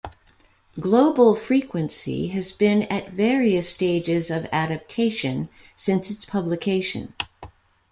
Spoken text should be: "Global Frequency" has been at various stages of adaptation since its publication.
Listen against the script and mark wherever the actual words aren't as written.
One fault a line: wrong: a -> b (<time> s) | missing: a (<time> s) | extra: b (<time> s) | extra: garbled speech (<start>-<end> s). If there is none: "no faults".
no faults